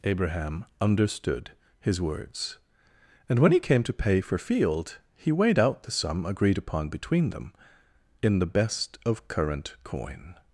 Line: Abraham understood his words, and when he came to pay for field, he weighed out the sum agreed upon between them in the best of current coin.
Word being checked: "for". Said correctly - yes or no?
yes